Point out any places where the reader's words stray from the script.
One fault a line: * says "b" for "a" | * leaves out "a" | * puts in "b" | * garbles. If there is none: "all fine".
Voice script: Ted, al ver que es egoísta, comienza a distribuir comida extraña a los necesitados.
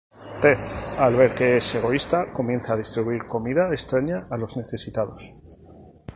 all fine